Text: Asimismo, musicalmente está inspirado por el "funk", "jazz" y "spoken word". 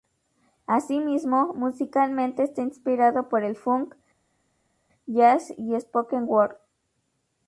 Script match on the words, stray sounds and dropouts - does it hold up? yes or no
yes